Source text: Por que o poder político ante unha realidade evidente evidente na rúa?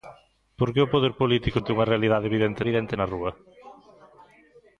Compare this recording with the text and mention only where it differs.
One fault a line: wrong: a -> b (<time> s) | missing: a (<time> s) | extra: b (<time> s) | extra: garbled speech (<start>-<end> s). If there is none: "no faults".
no faults